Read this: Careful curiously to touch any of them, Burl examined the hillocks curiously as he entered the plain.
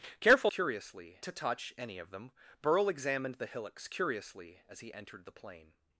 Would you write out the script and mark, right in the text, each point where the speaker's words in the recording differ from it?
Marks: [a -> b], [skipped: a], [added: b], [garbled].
Careful curiously to touch any of them, Burl examined the hillocks curiously as he entered the plain.